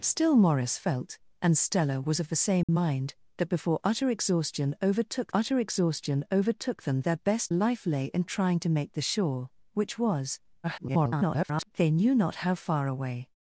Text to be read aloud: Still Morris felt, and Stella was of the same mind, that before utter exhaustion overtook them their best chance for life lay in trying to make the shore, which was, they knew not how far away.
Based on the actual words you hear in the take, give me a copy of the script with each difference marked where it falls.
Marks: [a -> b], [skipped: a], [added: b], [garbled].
Still Morris felt, and Stella was of the same mind, that before utter exhaustion overtook [added: utter exhaustion overtook] them their best [skipped: chance for] life lay in trying to make the shore, which was, [garbled] they knew not how far away.